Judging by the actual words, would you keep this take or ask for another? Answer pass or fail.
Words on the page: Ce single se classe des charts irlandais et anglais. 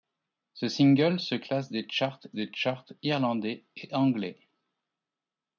fail